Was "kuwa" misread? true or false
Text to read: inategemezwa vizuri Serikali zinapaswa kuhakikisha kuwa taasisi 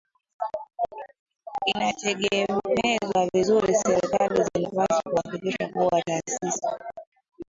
false